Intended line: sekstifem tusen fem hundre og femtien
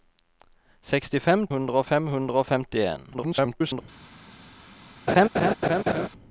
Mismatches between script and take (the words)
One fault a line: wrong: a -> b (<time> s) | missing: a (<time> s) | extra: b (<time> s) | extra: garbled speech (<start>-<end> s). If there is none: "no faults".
wrong: tusen -> hundre (1.5 s)
extra: garbled speech (3.1-3.8 s)